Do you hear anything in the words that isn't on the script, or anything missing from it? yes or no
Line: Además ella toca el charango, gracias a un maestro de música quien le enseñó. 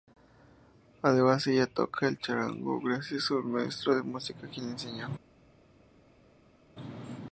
no